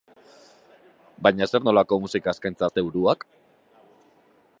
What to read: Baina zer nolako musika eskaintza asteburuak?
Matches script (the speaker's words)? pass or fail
pass